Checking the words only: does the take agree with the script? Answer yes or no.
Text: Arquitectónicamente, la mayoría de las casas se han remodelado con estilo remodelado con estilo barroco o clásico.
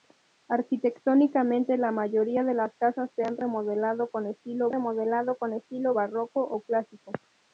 yes